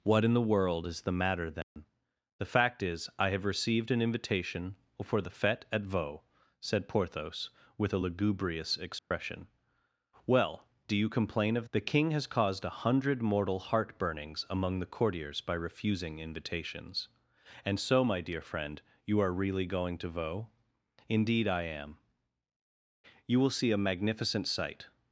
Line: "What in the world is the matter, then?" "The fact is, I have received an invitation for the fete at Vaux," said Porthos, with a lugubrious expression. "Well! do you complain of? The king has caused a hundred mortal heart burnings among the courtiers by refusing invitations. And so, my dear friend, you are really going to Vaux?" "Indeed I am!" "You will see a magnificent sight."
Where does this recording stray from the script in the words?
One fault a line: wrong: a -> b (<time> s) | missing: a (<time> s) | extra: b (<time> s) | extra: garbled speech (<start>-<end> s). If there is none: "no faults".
no faults